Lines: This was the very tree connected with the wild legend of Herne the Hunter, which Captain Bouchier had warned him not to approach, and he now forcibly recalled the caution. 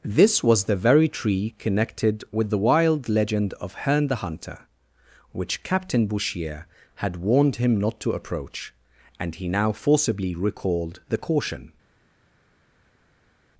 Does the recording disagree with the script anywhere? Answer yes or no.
no